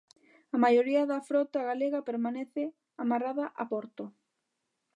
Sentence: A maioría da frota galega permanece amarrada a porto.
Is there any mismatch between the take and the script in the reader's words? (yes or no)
no